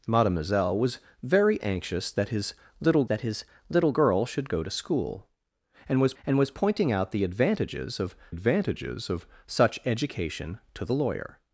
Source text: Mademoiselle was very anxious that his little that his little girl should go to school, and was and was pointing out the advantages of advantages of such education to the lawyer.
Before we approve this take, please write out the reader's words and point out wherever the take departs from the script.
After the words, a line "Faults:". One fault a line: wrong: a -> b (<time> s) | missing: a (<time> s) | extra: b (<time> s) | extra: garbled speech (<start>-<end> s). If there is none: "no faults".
Mademoiselle was very anxious that his little that his little girl should go to school, and was and was pointing out the advantages of advantages of such education to the lawyer.
Faults:
no faults